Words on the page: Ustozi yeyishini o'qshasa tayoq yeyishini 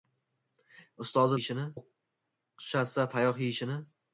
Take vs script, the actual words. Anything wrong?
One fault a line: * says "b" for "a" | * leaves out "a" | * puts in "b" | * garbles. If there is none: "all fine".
all fine